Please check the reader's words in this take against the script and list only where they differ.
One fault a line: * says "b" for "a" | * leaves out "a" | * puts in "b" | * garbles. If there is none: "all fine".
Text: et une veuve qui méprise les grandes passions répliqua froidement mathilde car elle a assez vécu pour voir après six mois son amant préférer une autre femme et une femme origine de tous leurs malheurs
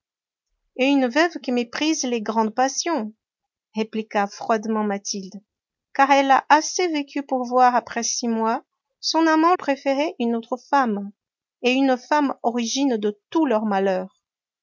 all fine